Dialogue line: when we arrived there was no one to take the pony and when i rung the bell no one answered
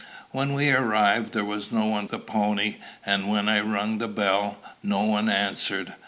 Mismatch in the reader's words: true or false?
true